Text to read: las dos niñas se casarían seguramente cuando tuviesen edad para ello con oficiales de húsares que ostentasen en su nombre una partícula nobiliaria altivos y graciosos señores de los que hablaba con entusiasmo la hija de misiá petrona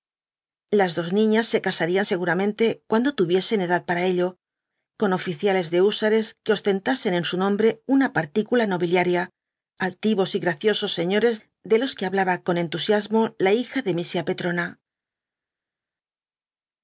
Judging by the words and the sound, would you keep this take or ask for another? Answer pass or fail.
pass